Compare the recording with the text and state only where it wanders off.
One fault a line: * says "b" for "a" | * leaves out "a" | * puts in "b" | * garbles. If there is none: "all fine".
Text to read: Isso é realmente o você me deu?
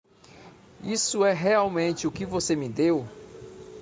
* puts in "que"